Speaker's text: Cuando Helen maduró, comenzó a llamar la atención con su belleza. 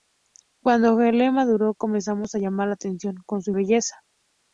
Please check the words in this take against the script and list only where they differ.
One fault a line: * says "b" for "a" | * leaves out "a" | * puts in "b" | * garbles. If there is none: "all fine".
all fine